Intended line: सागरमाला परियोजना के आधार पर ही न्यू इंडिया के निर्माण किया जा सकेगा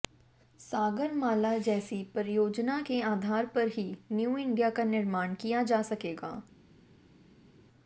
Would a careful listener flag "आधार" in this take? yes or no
no